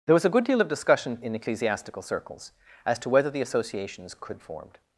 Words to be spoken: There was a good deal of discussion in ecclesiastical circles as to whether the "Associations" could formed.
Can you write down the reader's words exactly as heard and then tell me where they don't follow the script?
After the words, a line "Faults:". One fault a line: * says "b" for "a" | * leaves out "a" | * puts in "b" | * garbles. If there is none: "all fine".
There was a good deal of discussion in ecclesiastical circles as to whether the "Associations" could formed.
Faults:
all fine